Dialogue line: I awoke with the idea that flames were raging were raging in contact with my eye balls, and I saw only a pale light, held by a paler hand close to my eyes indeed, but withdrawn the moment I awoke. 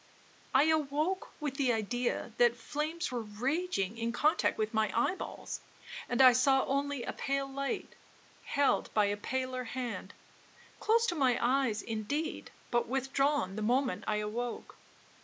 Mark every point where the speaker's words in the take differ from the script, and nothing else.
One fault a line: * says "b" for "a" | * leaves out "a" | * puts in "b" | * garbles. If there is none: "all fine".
* leaves out "were raging"